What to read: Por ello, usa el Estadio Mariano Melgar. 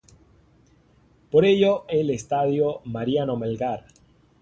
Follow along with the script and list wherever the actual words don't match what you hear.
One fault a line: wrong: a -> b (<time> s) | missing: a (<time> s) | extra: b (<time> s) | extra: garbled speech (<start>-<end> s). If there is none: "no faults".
missing: usa (1.9 s)